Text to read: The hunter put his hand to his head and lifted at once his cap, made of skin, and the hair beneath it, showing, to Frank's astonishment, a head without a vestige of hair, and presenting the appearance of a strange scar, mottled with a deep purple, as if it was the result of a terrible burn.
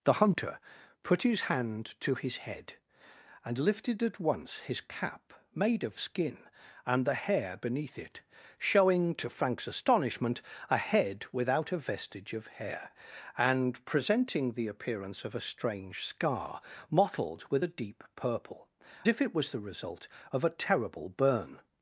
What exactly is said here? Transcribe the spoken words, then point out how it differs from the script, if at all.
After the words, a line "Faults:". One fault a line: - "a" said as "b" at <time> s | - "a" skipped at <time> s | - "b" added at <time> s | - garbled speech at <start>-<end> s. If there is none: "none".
The hunter put his hand to his head and lifted at once his cap, made of skin, and the hair beneath it, showing, to Frank's astonishment, a head without a vestige of hair, and presenting the appearance of a strange scar, mottled with a deep purple, if it was the result of a terrible burn.
Faults:
- "as" skipped at 18.7 s